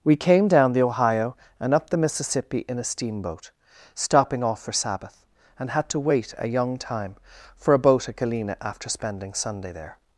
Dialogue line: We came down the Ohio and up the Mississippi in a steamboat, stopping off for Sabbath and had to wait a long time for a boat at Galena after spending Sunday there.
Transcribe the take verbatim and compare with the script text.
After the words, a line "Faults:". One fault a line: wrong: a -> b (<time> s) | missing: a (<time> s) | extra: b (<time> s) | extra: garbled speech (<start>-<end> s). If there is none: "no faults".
We came down the Ohio and up the Mississippi in a steamboat, stopping off for Sabbath and had to wait a young time for a boat at Galena after spending Sunday there.
Faults:
wrong: long -> young (6.5 s)